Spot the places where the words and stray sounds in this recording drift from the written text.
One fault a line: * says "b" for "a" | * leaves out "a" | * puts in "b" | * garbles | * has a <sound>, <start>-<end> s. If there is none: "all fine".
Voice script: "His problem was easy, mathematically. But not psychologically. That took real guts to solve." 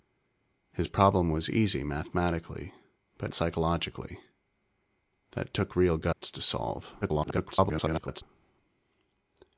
* leaves out "not"
* has a dropout, 6.1-6.2 s
* garbles